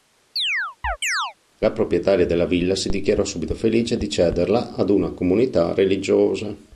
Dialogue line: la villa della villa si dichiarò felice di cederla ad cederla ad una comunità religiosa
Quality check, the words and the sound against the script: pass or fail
fail